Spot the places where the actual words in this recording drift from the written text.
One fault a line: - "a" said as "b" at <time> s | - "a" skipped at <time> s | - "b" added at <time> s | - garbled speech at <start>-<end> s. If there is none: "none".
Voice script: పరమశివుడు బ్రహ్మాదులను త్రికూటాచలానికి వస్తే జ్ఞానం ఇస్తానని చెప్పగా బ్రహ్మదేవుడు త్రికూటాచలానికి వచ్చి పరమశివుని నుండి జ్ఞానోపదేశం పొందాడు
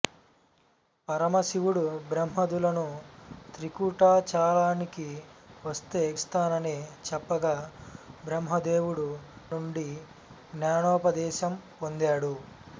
- "జ్ఞానం" skipped at 6.0 s
- "త్రికూటాచలానికి వచ్చి పరమశివుని" skipped at 9.1 s